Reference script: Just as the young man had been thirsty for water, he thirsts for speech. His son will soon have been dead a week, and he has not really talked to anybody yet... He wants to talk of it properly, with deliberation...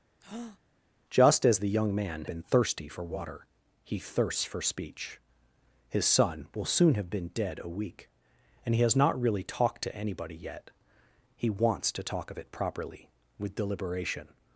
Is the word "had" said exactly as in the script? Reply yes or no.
no